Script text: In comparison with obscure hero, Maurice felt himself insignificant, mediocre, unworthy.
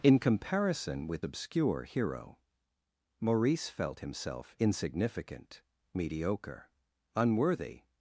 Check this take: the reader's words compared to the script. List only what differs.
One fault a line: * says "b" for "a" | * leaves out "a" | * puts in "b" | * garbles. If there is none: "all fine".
all fine